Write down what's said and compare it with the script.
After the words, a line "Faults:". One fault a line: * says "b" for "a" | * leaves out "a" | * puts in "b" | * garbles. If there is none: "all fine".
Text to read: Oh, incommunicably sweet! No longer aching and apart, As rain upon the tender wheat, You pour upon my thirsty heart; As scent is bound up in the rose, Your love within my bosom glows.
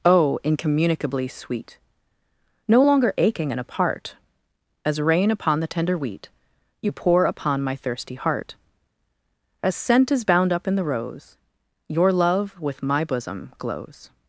Oh, incommunicably sweet! No longer aching and apart, As rain upon the tender wheat, You pour upon my thirsty heart; As scent is bound up in the rose, Your love with my bosom glows.
Faults:
* says "with" for "within"